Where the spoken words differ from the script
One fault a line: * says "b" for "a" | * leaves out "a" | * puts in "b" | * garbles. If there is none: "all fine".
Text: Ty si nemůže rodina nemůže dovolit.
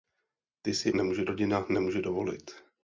all fine